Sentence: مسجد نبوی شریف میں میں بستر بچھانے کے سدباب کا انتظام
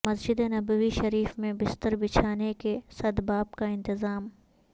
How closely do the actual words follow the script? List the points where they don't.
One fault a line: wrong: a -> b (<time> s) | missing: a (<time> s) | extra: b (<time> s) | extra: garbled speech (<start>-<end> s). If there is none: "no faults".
missing: میں (1.5 s)